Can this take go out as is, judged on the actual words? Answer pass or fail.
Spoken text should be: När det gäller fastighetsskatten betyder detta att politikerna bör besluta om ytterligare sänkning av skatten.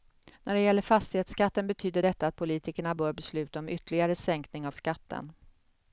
pass